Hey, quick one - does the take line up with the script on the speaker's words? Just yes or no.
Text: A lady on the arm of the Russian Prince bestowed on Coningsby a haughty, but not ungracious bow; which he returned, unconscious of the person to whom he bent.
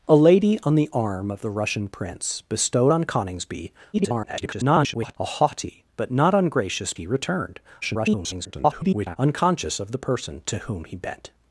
no